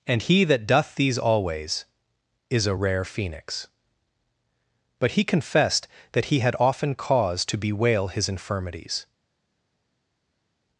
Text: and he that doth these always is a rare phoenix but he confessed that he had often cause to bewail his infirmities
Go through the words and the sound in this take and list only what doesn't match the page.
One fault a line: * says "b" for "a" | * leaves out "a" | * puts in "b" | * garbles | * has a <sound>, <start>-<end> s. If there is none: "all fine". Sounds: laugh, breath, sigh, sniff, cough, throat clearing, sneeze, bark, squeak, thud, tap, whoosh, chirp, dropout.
all fine